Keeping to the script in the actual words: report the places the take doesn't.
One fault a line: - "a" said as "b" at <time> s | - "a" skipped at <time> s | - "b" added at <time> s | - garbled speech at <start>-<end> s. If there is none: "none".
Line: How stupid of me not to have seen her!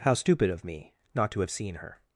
none